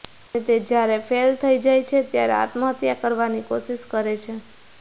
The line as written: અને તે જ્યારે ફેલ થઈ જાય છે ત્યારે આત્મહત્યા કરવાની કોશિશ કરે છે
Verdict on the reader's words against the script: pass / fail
pass